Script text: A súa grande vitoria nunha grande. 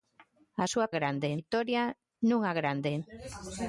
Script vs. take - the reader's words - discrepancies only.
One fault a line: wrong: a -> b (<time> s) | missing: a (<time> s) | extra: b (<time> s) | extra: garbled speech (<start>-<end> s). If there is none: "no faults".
no faults